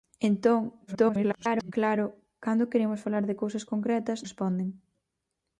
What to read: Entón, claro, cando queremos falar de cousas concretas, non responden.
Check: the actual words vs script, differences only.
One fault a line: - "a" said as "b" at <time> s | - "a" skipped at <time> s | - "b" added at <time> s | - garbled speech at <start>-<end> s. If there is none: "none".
- garbled speech at 0.9-1.7 s
- "non" skipped at 4.2 s